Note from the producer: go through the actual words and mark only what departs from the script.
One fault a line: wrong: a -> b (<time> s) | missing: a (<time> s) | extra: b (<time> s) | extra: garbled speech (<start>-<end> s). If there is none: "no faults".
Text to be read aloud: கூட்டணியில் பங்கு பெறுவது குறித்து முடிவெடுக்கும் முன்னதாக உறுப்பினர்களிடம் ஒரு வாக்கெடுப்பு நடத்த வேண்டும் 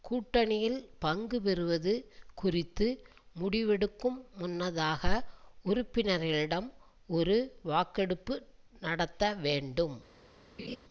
no faults